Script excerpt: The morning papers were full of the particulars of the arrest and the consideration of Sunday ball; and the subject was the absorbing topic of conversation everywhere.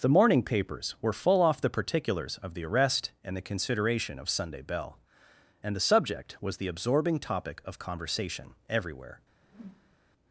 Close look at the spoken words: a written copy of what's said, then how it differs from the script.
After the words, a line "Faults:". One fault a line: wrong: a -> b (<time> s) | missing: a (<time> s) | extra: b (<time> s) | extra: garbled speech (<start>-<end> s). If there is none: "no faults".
The morning papers were full off the particulars of the arrest and the consideration of Sunday bell; and the subject was the absorbing topic of conversation everywhere.
Faults:
wrong: of -> off (1.4 s)
wrong: ball -> bell (4.6 s)